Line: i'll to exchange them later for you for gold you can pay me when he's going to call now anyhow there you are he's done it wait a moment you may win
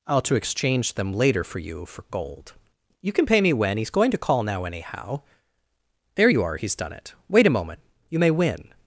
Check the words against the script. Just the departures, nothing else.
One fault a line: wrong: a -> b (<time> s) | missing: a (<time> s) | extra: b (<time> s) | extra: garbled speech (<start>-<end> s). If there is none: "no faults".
no faults